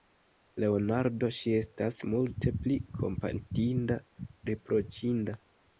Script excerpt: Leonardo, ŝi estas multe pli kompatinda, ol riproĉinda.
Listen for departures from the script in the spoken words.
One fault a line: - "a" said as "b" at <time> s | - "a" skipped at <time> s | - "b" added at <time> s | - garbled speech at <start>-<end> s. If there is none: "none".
- "ol" skipped at 4.0 s